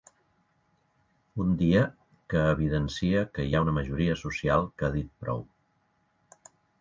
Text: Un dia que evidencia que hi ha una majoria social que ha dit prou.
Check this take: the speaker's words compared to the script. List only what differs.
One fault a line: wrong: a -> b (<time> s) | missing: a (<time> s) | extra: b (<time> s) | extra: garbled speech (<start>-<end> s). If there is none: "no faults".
no faults